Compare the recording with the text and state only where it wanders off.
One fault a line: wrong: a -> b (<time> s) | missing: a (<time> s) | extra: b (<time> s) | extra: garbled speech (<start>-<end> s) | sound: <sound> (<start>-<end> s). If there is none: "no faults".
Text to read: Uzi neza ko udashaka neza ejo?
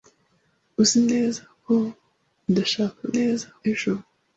no faults